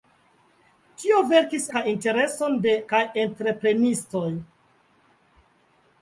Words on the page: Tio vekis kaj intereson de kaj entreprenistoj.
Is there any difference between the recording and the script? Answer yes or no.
no